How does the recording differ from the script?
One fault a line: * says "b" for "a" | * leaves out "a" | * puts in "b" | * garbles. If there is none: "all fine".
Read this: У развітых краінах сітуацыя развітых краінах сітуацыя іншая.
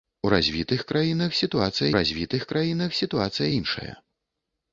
all fine